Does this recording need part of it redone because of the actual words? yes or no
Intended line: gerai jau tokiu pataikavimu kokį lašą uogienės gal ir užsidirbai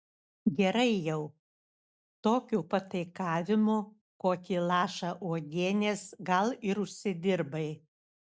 no